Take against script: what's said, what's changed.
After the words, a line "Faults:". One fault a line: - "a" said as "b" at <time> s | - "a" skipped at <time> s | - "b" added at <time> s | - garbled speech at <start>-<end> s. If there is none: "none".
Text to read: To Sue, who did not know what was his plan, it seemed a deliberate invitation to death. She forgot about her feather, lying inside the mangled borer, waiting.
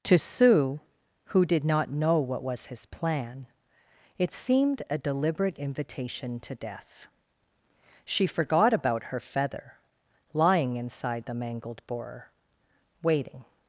To Sue, who did not know what was his plan, it seemed a deliberate invitation to death. She forgot about her feather, lying inside the mangled borer, waiting.
Faults:
none